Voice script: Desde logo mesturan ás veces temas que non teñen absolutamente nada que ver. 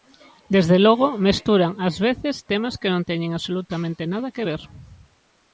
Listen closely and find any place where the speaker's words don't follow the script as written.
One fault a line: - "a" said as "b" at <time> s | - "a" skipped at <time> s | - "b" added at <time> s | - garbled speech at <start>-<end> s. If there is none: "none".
none